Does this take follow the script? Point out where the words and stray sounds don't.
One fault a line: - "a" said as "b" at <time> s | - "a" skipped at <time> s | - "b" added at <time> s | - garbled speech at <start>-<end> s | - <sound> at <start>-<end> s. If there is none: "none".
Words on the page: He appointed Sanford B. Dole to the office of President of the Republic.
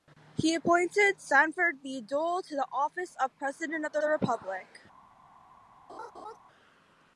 - "the" added at 4.0 s
- laugh at 5.9-6.4 s